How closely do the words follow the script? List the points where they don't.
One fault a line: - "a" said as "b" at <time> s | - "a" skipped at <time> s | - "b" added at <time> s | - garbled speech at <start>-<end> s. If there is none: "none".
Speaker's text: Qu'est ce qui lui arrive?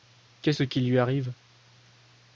none